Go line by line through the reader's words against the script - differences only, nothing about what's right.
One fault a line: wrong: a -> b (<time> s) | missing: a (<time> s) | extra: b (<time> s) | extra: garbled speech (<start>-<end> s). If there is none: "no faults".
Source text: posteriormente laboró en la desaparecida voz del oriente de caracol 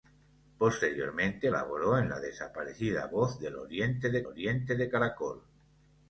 extra: oriente de (4.2 s)